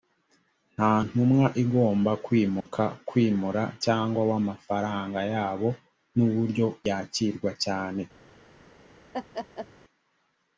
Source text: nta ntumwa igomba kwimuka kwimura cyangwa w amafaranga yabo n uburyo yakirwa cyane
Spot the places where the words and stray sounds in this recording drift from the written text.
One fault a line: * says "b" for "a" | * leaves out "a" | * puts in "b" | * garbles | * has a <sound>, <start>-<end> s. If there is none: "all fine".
* has a dropout, 2.6-2.7 s
* has a laugh, 9.1-9.7 s